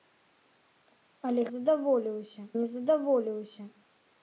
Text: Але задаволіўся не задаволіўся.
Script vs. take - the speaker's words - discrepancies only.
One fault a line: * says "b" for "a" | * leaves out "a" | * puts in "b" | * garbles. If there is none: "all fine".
all fine